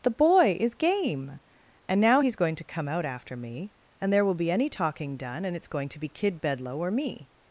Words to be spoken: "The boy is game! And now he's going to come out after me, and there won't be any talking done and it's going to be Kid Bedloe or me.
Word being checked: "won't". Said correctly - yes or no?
no